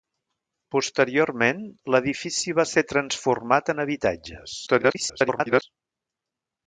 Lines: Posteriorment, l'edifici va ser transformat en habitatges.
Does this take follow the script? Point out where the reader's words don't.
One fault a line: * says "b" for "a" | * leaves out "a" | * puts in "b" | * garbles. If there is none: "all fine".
* garbles